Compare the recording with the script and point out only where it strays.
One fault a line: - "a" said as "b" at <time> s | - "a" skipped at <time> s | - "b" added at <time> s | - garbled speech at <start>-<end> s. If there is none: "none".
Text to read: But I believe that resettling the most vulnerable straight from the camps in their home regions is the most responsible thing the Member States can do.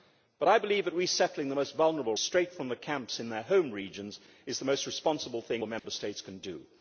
none